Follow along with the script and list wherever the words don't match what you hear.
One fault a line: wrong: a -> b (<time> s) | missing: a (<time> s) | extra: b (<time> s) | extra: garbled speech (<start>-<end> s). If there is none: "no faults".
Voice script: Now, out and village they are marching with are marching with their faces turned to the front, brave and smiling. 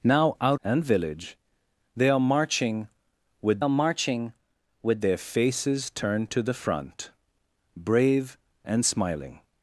no faults